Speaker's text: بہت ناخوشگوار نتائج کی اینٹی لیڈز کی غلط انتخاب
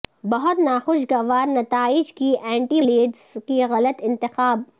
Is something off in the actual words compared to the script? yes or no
no